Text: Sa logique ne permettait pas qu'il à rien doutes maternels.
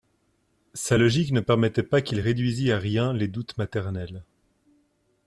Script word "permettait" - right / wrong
right